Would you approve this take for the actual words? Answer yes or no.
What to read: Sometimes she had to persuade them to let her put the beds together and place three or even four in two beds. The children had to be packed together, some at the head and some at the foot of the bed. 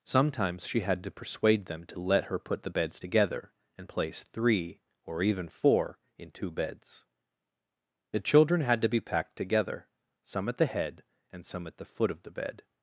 yes